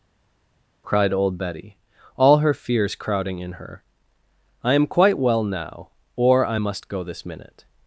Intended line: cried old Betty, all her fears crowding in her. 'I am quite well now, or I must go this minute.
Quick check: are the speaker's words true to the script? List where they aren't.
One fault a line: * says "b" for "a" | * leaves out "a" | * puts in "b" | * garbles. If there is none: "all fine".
all fine